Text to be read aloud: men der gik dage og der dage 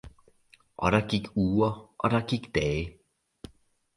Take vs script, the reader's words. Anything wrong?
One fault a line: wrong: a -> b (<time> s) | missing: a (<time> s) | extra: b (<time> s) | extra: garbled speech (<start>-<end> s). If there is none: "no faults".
wrong: men -> og (0.8 s)
wrong: dage -> uger (1.3 s)
extra: gik (2.3 s)